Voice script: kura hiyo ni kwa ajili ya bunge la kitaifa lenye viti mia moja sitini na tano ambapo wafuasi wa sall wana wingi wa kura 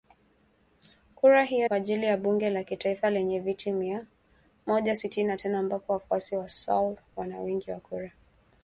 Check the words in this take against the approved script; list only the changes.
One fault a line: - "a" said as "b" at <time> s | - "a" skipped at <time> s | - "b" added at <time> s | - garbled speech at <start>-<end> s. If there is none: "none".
- "ni" skipped at 1.7 s